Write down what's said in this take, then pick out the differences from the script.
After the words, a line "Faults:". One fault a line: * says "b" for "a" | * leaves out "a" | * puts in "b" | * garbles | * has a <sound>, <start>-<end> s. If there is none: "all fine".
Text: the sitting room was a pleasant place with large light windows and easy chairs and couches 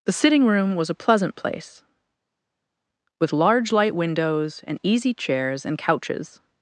the sitting room was a pleasant place with large light windows and easy chairs and couches
Faults:
all fine